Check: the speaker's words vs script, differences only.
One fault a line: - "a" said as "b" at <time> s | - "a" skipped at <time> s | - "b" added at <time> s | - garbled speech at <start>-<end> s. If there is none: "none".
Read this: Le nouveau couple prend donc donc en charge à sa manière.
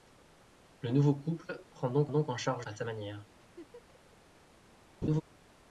none